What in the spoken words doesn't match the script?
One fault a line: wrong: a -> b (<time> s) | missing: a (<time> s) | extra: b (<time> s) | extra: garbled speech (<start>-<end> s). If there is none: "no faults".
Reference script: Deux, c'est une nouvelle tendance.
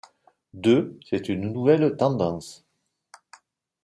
no faults